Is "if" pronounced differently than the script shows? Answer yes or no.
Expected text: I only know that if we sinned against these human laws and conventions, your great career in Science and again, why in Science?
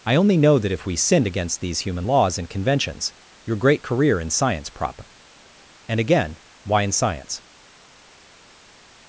no